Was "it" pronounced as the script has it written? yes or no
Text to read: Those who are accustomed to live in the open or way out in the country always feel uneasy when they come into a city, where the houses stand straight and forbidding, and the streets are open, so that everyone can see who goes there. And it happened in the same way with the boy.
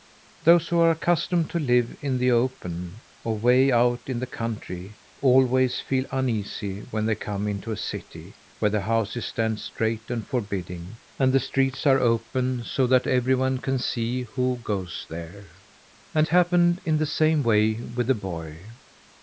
no